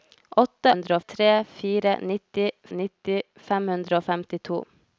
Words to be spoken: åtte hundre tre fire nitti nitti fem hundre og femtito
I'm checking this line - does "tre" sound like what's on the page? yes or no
yes